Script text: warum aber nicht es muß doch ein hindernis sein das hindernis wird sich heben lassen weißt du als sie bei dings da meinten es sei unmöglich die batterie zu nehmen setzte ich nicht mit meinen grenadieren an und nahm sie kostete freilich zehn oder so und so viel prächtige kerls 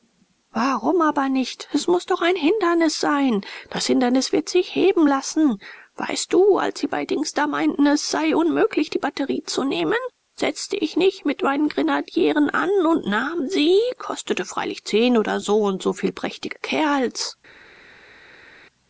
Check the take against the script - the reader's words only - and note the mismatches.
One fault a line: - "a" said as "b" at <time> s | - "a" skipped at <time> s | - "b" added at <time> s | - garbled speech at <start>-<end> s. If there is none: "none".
none